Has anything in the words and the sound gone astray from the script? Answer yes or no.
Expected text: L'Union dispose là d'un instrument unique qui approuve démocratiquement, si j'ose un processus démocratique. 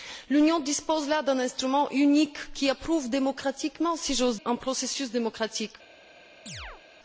yes